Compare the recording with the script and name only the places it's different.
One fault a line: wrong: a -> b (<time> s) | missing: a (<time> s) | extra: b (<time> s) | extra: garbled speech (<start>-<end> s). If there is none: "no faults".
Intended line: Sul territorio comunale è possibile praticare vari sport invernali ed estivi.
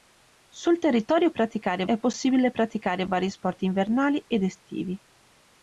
wrong: comunale -> praticare (1.3 s)